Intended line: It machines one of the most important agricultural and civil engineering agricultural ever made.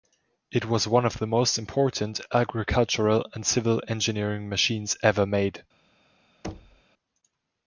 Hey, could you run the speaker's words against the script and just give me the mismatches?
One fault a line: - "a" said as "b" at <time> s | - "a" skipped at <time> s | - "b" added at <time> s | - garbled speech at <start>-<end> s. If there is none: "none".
- "machines" said as "was" at 0.7 s
- "agricultural" said as "machines" at 4.5 s